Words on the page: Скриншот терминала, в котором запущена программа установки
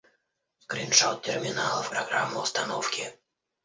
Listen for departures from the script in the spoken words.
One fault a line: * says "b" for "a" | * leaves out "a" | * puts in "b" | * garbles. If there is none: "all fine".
* leaves out "котором запущена"